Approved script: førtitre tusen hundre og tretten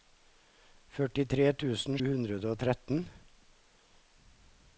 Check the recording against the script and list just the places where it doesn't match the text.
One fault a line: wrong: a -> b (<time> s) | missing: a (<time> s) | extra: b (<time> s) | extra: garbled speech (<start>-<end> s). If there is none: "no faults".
no faults